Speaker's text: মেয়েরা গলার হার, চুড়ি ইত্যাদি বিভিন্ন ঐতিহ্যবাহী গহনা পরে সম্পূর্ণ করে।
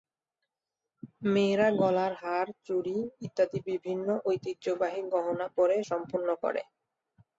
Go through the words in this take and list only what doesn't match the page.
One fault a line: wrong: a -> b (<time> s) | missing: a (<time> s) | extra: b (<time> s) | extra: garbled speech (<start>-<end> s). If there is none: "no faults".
no faults